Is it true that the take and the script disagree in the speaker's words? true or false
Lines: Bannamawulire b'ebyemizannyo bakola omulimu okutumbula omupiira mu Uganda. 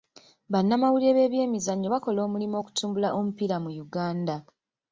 false